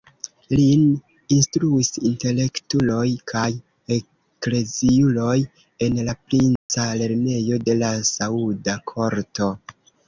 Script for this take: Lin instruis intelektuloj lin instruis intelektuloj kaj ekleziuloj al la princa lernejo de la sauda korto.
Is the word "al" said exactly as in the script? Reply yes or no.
no